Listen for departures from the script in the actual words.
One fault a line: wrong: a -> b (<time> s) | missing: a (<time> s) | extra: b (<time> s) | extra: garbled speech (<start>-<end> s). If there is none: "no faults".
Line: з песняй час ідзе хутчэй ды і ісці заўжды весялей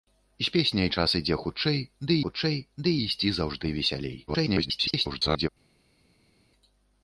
extra: хутчэй ды (2.2 s)
extra: garbled speech (4.3-5.5 s)